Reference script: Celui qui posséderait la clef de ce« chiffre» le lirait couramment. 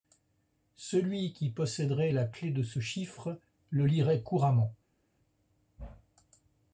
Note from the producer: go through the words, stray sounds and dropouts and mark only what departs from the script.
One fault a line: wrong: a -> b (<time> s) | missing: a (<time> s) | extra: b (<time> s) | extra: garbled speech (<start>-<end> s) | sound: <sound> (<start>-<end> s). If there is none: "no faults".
no faults